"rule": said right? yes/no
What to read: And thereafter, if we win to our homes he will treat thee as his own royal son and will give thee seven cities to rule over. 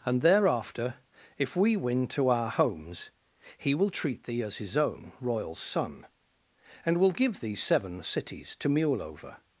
no